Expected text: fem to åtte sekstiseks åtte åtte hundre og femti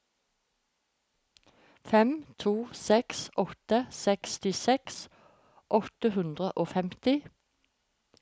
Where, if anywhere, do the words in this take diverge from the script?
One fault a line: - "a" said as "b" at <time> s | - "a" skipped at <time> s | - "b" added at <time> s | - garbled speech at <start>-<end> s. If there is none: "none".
- "seks" added at 2.8 s
- "åtte" skipped at 6.1 s